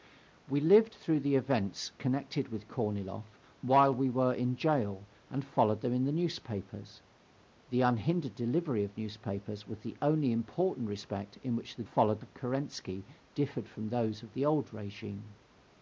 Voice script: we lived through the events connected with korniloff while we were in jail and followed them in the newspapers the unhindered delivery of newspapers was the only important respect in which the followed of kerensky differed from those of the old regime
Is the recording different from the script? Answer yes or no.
no